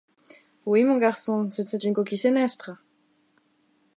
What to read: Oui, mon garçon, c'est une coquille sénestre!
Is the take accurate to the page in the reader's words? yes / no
no